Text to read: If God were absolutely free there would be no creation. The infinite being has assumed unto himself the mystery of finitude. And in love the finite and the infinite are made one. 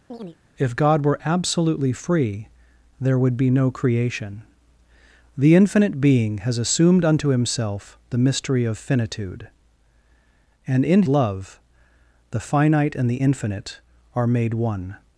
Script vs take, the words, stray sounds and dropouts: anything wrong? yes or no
yes